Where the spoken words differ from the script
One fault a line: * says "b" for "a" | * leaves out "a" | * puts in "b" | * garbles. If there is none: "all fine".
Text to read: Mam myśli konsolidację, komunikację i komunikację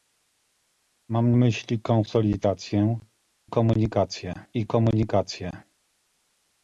all fine